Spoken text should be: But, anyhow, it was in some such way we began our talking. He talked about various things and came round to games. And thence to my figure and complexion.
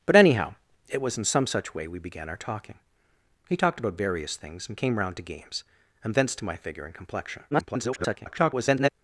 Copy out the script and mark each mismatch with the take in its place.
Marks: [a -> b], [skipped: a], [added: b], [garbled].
But, anyhow, it was in some such way we began our talking. He talked about various things and came round to games. And thence to my figure and complexion. [garbled]